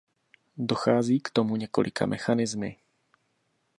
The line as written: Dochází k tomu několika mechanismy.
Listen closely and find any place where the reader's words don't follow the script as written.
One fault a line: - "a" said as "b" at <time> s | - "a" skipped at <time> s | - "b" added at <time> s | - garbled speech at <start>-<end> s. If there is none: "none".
none